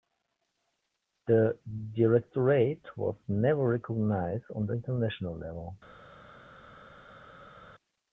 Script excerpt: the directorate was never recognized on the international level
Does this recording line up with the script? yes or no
yes